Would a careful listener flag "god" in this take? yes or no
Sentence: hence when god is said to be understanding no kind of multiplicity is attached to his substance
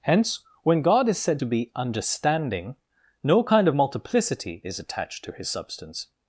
no